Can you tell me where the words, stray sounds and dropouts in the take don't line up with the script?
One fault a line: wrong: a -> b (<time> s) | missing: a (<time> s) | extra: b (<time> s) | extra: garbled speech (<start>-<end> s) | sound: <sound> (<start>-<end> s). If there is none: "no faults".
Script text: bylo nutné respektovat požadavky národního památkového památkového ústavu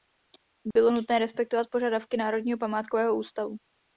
sound: dropout (0.7-0.8 s)
missing: památkového (3.2 s)